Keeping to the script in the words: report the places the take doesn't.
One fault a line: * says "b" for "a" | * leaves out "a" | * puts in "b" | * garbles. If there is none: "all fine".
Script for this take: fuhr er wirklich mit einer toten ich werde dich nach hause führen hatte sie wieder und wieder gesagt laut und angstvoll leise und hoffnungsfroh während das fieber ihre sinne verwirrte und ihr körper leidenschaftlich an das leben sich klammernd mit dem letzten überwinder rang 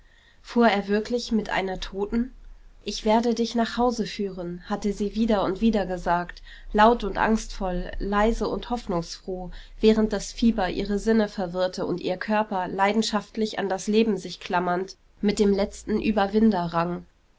all fine